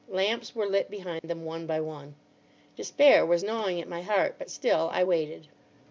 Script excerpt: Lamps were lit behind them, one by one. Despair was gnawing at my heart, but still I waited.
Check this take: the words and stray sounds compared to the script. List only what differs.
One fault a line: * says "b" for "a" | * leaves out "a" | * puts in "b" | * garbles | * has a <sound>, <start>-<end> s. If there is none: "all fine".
* has a dropout, 1.2-1.2 s